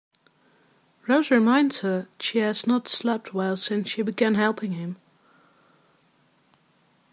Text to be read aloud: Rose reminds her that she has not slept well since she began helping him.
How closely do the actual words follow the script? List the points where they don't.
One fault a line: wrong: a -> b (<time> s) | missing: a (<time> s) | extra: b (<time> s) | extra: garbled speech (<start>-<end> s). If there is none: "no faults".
missing: that (2.1 s)